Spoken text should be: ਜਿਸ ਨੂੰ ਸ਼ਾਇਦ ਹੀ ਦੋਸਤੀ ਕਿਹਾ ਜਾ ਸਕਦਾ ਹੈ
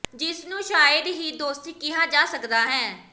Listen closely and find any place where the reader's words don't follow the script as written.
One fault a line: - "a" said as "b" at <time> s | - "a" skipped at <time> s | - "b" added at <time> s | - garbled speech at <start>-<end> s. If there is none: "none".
none